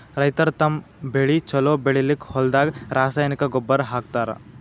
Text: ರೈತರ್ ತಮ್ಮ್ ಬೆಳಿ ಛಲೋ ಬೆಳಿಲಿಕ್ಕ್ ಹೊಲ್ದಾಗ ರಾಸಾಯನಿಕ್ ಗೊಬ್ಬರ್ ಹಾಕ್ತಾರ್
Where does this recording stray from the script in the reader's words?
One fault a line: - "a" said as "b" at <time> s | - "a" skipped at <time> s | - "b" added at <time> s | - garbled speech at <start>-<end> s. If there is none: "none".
none